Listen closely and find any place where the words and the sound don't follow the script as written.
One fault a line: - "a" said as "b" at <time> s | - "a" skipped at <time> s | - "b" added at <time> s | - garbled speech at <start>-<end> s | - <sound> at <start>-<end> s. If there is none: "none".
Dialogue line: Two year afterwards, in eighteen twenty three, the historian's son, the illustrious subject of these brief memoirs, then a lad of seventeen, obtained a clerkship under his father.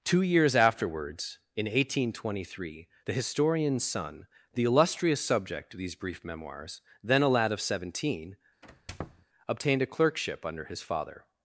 - "year" said as "years" at 0.2 s
- squeak at 8.6-9.3 s